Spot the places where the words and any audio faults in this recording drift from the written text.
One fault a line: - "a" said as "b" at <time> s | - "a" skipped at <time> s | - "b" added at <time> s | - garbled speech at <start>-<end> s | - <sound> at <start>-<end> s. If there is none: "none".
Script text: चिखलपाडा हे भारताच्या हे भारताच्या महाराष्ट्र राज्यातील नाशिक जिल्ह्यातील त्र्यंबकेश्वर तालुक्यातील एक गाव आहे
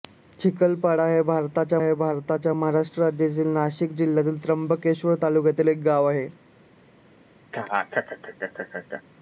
- laugh at 7.5-9.0 s